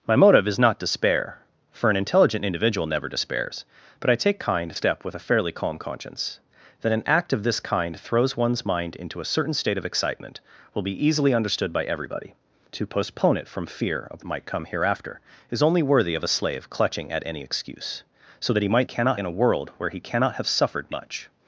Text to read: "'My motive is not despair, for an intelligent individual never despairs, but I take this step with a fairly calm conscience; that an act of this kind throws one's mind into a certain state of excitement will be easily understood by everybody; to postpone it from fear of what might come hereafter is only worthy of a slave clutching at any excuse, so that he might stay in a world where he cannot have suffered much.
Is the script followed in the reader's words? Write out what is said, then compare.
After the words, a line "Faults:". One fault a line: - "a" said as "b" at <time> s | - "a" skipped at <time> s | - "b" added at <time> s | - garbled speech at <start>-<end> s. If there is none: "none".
"'My motive is not despair, for an intelligent individual never despairs, but I take kind step with a fairly calm conscience; that an act of this kind throws one's mind into a certain state of excitement will be easily understood by everybody; to postpone it from fear of might come hereafter is only worthy of a slave clutching at any excuse, so that he might cannot in a world where he cannot have suffered much.
Faults:
- "this" said as "kind" at 4.4 s
- "what" skipped at 14.3 s
- "stay" said as "cannot" at 18.8 s